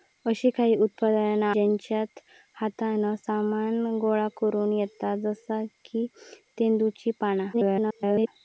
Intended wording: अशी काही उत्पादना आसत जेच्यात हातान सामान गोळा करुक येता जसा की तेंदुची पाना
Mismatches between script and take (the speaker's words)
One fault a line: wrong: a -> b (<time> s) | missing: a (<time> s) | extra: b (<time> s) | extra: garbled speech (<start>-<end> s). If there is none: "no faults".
missing: आसत (1.5 s)
extra: garbled speech (7.5-8.3 s)